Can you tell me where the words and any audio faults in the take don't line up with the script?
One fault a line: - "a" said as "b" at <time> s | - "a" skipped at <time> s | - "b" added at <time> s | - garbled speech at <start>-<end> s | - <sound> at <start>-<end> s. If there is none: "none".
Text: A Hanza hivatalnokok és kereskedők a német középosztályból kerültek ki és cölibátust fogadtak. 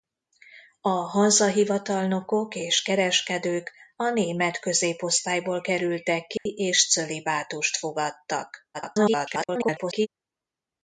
- dropout at 6.4-6.5 s
- garbled speech at 8.7-10.1 s